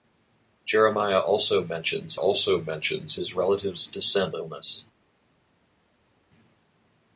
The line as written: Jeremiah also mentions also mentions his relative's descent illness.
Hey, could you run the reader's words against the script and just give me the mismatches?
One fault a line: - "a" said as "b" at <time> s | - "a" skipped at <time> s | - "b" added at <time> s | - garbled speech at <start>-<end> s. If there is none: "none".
none